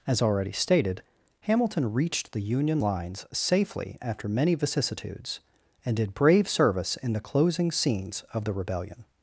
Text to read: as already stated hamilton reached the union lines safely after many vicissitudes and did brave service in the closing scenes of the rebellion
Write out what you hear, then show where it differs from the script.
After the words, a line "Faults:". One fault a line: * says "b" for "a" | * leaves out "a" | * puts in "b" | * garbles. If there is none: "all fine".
as already stated hamilton reached the union lines safely after many vicissitudes and did brave service in the closing scenes of the rebellion
Faults:
all fine